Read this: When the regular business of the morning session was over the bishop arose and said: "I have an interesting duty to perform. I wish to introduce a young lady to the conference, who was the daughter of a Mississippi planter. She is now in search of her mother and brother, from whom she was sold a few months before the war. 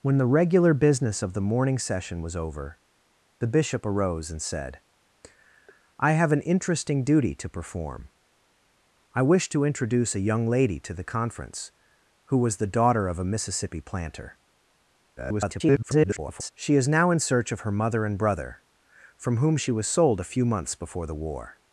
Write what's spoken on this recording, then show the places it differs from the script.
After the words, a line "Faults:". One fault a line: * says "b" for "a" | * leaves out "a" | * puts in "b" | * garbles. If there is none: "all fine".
When the regular business of the morning session was over the bishop arose and said: "I have an interesting duty to perform. I wish to introduce a young lady to the conference, who was the daughter of a Mississippi planter. [garbled] She is now in search of her mother and brother, from whom she was sold a few months before the war.
Faults:
* garbles